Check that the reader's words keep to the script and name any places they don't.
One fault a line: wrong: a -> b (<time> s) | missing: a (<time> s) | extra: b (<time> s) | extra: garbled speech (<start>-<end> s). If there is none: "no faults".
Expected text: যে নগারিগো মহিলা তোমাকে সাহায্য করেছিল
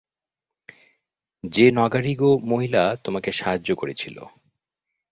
no faults